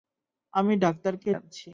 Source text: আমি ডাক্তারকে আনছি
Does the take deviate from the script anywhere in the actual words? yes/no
no